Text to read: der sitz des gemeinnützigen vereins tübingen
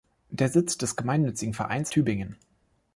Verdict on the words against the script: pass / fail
pass